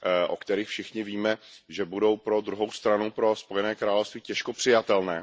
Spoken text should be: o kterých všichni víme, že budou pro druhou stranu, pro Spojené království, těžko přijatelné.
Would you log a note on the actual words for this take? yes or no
no